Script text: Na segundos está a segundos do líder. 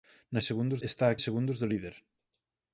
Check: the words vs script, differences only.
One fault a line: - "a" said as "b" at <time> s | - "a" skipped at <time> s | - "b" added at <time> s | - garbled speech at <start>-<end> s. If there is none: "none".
none